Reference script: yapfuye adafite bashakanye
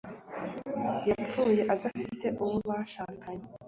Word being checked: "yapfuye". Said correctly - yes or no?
yes